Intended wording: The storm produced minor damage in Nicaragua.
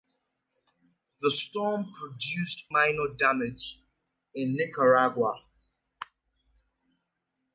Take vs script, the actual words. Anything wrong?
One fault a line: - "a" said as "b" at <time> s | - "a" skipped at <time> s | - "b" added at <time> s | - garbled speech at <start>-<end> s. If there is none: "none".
none